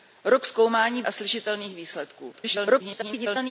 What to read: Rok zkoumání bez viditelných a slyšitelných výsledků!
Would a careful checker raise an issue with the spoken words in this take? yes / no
yes